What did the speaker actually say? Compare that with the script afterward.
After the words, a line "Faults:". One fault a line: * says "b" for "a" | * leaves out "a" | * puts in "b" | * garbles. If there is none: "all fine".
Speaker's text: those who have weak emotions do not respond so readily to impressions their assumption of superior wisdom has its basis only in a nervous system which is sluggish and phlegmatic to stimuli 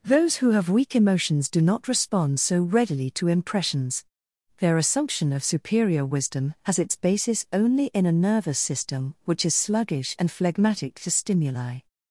those who have weak emotions do not respond so readily to impressions their assumption of superior wisdom has its basis only in a nervous system which is sluggish and phlegmatic to stimuli
Faults:
all fine